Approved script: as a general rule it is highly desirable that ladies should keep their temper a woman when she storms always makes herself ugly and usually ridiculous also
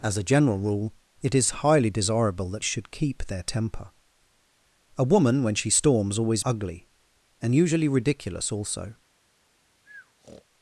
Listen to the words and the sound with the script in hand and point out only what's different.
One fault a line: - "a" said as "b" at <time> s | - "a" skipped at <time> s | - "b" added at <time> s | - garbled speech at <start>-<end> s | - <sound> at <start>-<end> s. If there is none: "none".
- "ladies" skipped at 2.6 s
- "makes herself" skipped at 6.4 s
- breath at 9.8-10.5 s